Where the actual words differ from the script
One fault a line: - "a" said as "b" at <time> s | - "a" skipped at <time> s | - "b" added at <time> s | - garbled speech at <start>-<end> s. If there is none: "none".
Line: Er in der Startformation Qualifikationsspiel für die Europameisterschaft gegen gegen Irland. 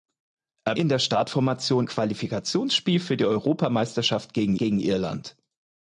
none